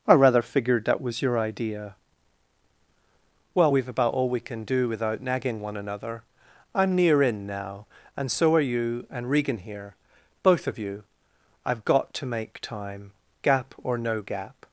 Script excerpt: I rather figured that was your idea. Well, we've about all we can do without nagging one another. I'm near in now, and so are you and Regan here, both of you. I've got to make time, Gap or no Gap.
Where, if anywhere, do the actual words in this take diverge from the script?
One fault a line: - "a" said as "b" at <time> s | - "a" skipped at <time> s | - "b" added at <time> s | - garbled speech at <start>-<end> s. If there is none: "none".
none